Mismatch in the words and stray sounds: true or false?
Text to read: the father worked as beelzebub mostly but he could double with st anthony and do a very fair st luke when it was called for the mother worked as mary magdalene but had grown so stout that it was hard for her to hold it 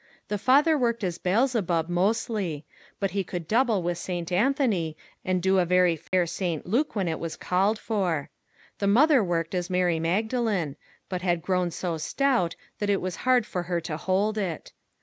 true